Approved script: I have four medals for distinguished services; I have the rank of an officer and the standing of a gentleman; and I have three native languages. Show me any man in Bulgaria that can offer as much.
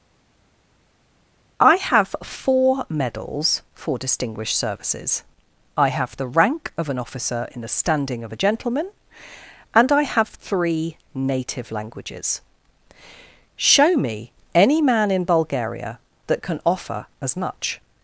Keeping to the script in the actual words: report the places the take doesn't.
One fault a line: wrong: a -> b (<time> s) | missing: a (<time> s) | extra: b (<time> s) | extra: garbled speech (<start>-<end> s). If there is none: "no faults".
wrong: and -> in (7.5 s)